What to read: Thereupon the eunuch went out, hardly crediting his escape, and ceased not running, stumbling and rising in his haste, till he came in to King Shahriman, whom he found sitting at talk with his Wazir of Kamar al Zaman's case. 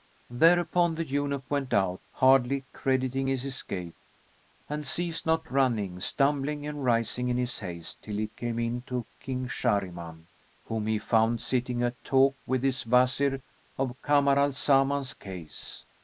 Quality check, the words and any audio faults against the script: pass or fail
pass